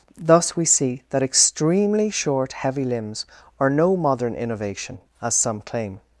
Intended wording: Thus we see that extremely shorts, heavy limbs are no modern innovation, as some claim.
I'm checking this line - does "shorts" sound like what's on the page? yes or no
no